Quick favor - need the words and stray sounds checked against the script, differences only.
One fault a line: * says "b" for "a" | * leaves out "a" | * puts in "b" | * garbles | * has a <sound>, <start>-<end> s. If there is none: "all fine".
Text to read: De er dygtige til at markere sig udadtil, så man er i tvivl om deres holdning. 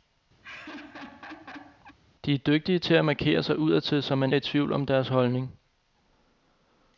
* has a laugh, 0.4-2.0 s